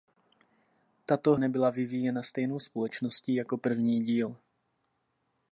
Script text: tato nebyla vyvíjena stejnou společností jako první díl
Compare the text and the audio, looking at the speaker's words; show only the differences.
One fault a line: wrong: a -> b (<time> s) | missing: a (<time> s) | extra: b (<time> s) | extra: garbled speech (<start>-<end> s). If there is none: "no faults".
no faults